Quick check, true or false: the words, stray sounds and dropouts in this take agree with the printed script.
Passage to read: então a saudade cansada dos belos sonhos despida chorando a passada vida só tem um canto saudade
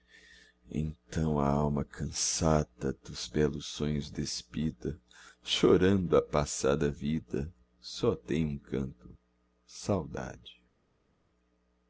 false